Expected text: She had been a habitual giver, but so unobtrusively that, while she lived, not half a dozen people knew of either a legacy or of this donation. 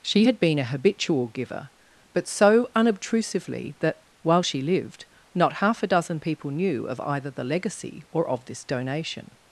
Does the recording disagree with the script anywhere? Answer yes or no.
yes